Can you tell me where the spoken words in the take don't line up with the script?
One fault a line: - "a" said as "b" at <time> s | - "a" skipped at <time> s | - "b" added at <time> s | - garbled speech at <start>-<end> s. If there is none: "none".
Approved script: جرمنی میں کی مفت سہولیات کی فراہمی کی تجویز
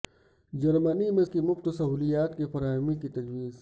none